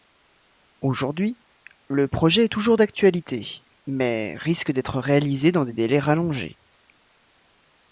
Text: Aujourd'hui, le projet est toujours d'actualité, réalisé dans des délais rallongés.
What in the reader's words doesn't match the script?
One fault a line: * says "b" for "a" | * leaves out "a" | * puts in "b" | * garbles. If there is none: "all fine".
* puts in "mais risque d'être"